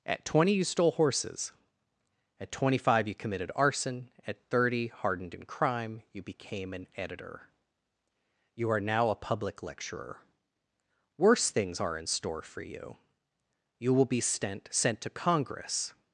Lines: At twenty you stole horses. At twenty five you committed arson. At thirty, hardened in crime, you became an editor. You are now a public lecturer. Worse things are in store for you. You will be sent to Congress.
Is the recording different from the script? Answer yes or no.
yes